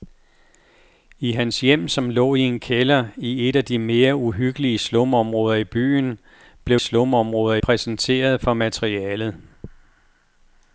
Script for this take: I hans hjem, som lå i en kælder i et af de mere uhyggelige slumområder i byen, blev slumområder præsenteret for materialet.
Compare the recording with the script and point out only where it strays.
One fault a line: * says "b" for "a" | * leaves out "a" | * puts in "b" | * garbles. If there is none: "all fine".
all fine